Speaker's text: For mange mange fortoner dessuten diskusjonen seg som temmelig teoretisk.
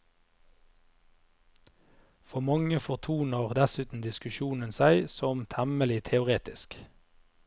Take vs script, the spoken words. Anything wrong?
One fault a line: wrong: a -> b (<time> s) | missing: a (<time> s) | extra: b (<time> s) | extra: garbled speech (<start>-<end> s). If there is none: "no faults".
missing: mange (2.8 s)